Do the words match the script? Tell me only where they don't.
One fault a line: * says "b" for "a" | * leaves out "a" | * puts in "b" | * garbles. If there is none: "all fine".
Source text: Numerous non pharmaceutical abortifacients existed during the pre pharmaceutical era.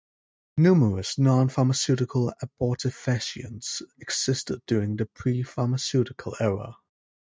all fine